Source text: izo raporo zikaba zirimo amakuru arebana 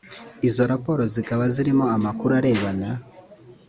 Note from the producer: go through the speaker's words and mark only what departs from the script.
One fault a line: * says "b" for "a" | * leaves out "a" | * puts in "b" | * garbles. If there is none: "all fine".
all fine